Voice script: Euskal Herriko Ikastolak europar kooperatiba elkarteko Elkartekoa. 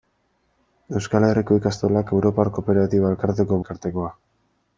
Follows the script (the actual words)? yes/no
yes